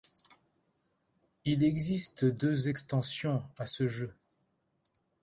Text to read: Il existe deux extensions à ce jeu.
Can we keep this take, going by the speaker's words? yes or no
yes